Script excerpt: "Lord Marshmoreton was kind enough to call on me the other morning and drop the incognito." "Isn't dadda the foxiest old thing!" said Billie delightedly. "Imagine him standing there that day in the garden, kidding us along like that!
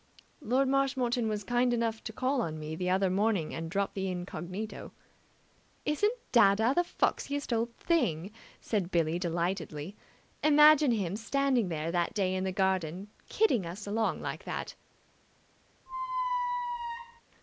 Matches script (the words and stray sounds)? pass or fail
fail